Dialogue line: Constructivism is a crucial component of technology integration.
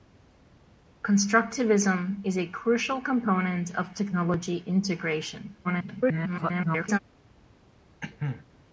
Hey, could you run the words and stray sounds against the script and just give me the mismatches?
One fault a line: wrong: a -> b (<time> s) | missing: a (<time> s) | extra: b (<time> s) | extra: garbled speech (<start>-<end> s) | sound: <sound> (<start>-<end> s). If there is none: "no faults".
extra: garbled speech (5.6-7.0 s)
sound: cough (8.0-8.5 s)